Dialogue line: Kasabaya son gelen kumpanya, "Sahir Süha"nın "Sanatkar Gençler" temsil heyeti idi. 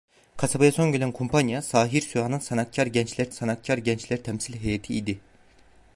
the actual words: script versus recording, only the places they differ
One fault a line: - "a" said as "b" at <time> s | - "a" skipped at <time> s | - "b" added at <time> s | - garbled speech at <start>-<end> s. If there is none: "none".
- "sanatkar Gençler" added at 3.3 s